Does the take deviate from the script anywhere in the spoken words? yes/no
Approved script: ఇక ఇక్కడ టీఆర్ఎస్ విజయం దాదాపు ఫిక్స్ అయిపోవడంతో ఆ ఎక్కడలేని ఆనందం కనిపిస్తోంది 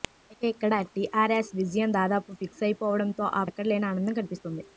no